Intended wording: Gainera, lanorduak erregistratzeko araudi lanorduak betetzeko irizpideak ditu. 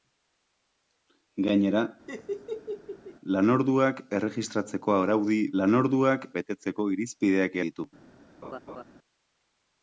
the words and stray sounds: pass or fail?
fail